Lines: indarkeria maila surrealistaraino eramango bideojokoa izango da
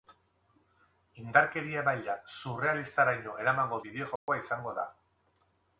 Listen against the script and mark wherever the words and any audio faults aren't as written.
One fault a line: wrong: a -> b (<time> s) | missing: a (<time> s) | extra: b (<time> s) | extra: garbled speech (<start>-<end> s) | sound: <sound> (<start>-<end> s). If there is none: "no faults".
sound: dropout (4.2-4.3 s)